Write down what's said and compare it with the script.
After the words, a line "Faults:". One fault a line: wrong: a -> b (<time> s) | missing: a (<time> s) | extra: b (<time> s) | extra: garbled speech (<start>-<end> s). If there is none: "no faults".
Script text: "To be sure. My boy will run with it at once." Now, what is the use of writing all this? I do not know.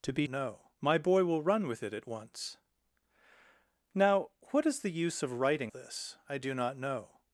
"To be know. My boy will run with it at once." Now, what is the use of writing this? I do not know.
Faults:
wrong: sure -> know (0.3 s)
missing: all (5.7 s)